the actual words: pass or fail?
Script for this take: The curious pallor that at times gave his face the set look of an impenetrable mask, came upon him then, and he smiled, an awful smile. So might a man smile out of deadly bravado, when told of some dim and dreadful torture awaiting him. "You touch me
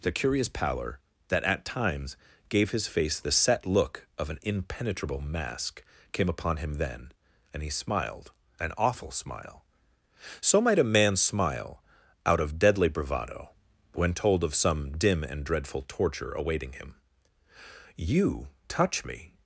pass